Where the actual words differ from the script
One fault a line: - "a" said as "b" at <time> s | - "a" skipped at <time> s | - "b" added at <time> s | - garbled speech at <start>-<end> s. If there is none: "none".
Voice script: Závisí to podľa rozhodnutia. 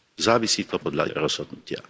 none